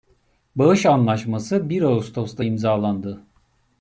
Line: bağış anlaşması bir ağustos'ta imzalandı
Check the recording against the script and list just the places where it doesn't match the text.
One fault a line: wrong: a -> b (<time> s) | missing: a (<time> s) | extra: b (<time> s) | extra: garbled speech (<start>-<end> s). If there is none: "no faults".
no faults